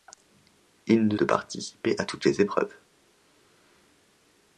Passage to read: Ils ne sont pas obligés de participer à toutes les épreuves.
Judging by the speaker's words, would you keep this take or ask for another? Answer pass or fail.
fail